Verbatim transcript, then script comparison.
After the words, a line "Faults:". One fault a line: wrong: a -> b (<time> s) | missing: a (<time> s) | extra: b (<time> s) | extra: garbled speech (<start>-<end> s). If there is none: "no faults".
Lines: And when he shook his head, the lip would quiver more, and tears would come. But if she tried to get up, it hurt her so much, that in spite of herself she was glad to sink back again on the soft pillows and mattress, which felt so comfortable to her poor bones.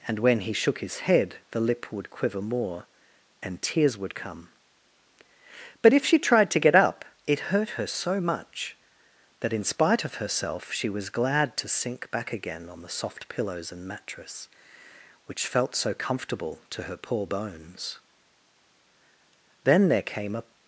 And when he shook his head, the lip would quiver more, and tears would come. But if she tried to get up, it hurt her so much, that in spite of herself she was glad to sink back again on the soft pillows and mattress, which felt so comfortable to her poor bones. Then there came a
Faults:
extra: Then there came a (19.6 s)